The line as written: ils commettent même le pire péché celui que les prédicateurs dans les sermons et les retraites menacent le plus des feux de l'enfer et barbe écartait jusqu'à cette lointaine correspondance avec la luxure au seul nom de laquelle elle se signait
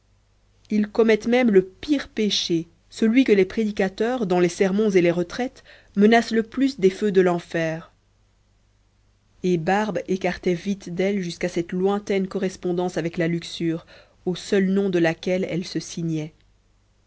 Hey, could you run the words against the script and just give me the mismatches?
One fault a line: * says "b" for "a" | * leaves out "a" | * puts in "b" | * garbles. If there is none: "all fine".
* puts in "vite d'elle"